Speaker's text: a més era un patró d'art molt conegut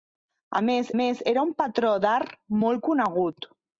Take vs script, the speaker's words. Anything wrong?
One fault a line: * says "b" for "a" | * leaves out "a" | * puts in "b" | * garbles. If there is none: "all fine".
* puts in "més"